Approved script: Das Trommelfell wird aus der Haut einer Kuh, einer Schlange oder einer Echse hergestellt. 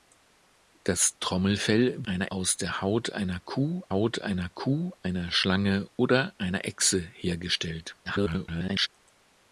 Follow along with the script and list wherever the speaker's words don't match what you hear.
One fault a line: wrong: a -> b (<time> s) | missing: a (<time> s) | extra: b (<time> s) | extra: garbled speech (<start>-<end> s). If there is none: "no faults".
wrong: wird -> einer (2.0 s)
extra: Haut einer Kuh (3.9 s)
extra: garbled speech (8.0-8.9 s)